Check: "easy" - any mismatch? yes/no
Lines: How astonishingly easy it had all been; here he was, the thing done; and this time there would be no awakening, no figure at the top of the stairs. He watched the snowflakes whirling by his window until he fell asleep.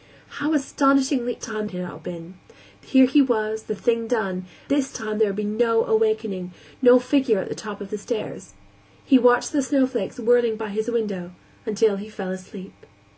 yes